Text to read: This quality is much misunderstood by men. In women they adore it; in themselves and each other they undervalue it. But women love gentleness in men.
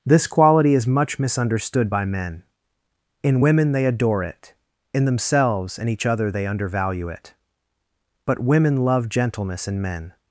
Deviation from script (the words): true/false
false